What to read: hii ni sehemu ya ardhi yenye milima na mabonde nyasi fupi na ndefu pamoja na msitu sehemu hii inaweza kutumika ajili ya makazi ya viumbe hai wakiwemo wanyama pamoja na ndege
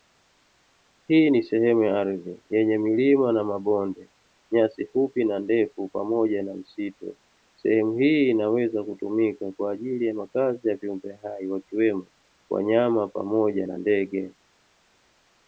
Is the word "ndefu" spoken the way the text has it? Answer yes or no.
yes